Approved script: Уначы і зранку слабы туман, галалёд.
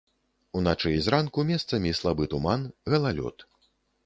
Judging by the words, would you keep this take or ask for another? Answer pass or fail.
fail